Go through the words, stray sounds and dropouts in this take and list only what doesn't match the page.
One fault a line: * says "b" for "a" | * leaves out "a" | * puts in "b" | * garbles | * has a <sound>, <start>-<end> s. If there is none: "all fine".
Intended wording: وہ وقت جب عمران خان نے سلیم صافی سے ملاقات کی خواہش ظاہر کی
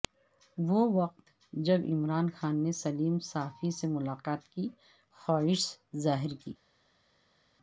all fine